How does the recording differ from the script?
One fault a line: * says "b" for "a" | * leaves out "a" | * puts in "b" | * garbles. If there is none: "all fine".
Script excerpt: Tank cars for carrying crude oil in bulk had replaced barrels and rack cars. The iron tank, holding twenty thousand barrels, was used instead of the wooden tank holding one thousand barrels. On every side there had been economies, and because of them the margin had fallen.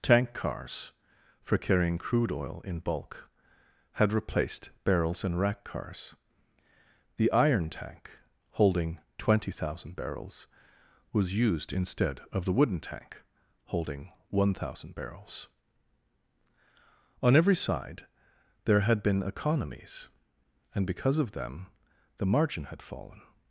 all fine